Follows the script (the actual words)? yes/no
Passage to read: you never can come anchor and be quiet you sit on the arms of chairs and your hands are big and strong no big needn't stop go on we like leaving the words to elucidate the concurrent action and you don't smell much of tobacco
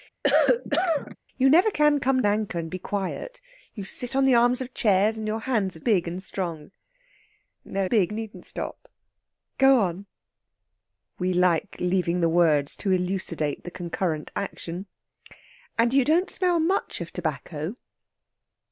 yes